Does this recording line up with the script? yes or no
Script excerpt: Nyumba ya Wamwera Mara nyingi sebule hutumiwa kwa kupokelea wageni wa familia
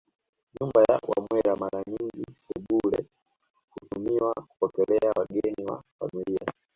no